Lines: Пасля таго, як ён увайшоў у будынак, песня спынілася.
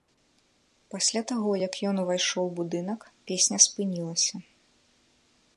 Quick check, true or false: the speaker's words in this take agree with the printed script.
true